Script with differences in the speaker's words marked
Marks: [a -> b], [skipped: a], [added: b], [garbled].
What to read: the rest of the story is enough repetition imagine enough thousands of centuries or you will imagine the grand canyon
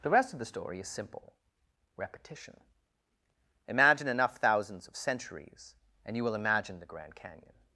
the rest of the story is [enough -> simple] repetition imagine enough thousands of centuries [or -> and] you will imagine the grand canyon